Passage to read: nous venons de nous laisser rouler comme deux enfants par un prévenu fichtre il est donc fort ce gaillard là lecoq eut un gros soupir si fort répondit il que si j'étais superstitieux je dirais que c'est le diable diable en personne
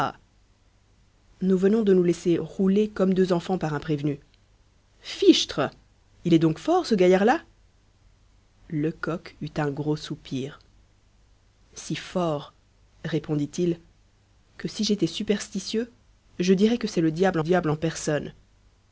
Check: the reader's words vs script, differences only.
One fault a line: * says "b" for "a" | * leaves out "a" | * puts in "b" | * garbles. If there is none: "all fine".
all fine